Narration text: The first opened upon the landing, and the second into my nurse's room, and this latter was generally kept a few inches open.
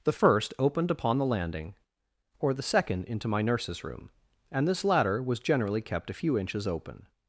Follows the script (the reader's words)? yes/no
no